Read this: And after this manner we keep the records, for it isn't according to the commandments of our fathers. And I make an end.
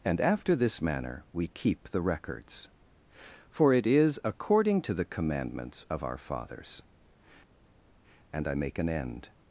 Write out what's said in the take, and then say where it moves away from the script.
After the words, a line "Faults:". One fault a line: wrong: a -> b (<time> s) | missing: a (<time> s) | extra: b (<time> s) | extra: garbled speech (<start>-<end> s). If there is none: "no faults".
And after this manner we keep the records, for it is according to the commandments of our fathers. And I make an end.
Faults:
wrong: isn't -> is (3.9 s)